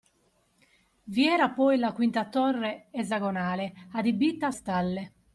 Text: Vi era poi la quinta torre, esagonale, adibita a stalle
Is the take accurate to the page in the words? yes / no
yes